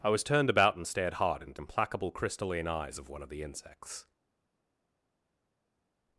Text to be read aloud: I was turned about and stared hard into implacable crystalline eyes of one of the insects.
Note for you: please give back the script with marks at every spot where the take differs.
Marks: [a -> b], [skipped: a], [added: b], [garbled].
I was turned about and stared hard into implacable crystalline eyes of one of the insects.